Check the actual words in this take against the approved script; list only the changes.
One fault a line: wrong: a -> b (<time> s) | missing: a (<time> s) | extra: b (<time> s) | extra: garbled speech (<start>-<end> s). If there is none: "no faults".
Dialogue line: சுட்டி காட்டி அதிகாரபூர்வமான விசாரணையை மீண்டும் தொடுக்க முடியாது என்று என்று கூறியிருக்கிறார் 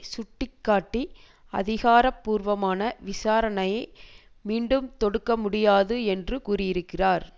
missing: என்று (6.4 s)